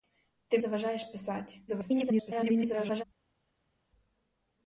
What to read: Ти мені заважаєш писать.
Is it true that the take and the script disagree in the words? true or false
true